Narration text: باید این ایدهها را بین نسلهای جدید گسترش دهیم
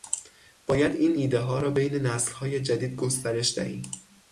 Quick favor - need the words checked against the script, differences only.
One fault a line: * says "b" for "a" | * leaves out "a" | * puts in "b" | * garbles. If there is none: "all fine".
all fine